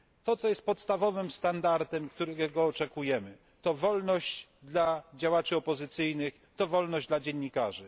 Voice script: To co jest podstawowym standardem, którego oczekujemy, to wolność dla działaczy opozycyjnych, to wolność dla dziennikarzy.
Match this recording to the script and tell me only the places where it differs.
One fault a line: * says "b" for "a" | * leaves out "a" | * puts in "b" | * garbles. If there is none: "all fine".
all fine